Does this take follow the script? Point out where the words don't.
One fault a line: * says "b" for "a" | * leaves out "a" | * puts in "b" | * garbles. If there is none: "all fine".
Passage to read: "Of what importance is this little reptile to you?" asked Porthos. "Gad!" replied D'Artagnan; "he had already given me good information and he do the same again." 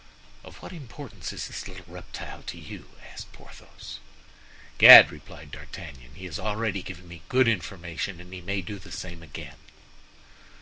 * says "has" for "had"
* puts in "may"